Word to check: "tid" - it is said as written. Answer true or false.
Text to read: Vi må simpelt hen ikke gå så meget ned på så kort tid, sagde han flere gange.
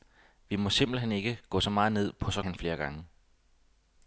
false